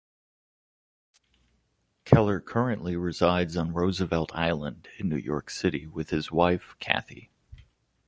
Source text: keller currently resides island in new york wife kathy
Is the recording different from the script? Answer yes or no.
yes